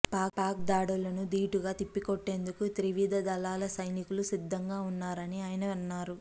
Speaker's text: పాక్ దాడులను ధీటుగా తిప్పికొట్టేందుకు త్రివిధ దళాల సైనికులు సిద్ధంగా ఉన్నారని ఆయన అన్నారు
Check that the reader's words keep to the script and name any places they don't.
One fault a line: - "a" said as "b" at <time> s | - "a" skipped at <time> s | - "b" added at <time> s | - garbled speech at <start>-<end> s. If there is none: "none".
none